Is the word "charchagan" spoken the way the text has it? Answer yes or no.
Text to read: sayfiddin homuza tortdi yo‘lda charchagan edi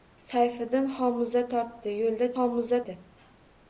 no